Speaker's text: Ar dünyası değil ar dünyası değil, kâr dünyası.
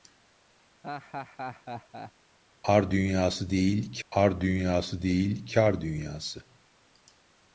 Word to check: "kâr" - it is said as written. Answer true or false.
true